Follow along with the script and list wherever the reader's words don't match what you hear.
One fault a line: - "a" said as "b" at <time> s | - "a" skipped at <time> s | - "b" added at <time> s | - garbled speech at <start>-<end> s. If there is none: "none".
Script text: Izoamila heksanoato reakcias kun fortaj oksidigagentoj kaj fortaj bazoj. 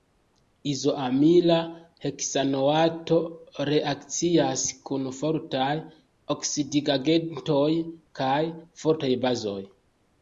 none